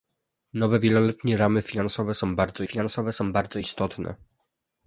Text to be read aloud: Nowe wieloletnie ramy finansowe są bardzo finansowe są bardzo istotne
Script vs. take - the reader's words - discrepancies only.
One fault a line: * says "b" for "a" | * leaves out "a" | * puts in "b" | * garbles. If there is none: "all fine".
all fine